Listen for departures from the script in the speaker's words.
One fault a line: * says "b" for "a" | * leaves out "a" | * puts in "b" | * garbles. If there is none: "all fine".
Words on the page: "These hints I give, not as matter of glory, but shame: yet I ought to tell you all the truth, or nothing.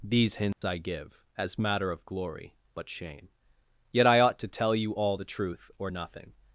* leaves out "not"